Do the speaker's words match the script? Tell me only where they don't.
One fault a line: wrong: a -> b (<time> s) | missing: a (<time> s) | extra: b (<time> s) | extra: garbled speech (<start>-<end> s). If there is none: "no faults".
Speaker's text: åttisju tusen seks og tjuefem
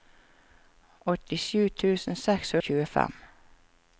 no faults